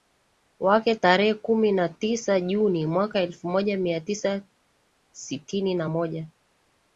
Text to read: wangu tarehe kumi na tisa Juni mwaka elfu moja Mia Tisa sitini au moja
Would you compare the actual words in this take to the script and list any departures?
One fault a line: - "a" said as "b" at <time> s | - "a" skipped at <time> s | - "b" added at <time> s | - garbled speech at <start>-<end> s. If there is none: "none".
- "wangu" said as "wake" at 0.6 s
- "au" said as "na" at 5.7 s